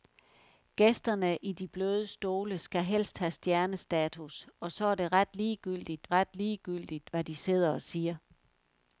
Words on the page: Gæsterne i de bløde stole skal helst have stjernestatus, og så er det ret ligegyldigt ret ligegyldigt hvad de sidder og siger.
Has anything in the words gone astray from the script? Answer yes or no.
no